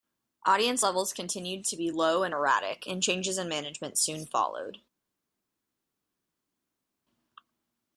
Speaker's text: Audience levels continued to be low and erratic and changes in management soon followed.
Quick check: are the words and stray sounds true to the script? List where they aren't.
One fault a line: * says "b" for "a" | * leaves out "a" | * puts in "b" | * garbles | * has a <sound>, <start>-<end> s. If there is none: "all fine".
all fine